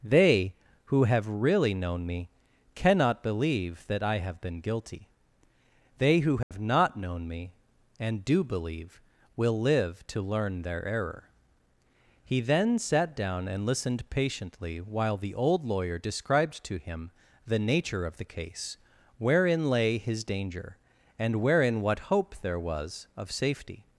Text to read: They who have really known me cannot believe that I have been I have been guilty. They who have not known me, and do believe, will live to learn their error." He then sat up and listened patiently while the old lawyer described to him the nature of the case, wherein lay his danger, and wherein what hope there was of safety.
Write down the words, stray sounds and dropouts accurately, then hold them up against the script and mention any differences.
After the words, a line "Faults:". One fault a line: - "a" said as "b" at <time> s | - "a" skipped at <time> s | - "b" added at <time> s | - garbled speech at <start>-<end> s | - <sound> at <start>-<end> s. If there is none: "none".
They who have really known me cannot believe that I have been guilty. They who have not known me, and do believe, will live to learn their error." He then sat down and listened patiently while the old lawyer described to him the nature of the case, wherein lay his danger, and wherein what hope there was of safety.
Faults:
- "I have been" skipped at 4.6 s
- dropout at 6.4-6.5 s
- "up" said as "down" at 13.1 s